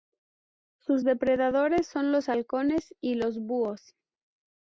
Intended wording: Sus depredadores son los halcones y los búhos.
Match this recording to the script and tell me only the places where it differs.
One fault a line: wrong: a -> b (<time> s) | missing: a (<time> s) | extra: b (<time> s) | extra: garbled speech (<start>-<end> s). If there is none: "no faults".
no faults